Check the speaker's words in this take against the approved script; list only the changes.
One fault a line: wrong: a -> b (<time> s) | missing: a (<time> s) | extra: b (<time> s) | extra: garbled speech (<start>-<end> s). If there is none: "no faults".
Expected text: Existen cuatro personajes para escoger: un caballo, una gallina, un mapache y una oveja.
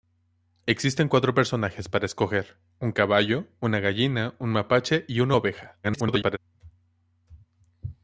extra: garbled speech (5.8-6.4 s)